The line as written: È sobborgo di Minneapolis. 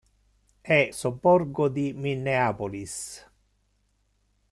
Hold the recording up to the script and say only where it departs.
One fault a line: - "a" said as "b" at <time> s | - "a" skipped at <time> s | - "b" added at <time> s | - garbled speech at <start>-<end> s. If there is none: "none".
none